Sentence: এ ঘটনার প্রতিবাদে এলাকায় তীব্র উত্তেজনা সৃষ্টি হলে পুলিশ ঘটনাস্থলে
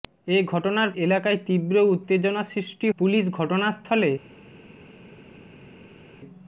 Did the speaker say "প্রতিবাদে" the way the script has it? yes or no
no